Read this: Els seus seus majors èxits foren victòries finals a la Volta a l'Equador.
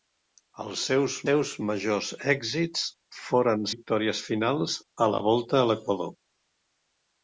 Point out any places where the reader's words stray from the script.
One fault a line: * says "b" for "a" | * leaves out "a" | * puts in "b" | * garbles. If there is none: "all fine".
all fine